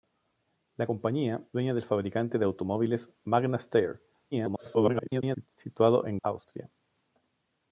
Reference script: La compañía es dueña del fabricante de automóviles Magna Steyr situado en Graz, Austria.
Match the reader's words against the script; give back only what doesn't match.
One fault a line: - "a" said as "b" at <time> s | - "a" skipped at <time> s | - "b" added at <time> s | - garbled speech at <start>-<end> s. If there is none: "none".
- "es" skipped at 1.4 s
- garbled speech at 4.3-5.5 s
- "Graz" skipped at 6.2 s